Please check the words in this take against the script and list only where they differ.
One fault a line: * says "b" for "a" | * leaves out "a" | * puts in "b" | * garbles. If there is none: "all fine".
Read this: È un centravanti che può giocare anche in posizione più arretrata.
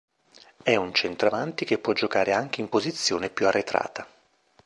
all fine